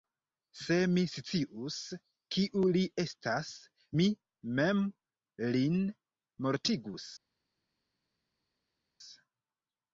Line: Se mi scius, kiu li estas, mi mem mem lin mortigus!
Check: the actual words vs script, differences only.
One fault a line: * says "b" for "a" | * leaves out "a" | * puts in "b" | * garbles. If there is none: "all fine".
* leaves out "mem"